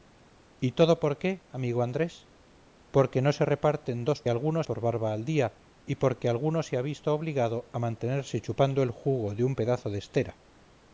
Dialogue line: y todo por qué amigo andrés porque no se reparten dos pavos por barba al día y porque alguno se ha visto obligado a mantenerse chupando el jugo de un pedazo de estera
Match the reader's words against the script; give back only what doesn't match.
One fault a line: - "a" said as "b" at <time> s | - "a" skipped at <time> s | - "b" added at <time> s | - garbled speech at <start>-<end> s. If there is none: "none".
- "pavos" said as "alguno" at 4.3 s